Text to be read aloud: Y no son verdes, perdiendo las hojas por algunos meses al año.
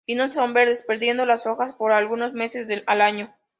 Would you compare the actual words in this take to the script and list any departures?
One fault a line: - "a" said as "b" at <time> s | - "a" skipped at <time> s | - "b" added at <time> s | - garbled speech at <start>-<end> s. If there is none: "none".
none